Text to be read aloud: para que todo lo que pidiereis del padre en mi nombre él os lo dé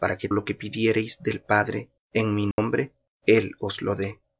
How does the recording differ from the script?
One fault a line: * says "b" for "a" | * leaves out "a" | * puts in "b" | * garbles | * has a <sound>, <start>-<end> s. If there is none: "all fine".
* leaves out "todo"
* has a dropout, 2.5-2.6 s